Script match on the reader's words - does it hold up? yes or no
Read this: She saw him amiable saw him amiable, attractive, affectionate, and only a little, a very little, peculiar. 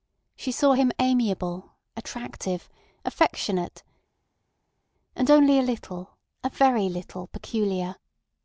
no